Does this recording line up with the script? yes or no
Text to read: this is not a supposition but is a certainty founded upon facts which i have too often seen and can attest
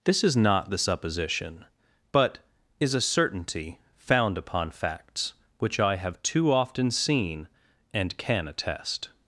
no